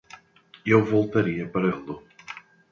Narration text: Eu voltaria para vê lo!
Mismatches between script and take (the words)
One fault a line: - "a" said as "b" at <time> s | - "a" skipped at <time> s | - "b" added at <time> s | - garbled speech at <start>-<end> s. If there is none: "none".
- "vê" skipped at 1.7 s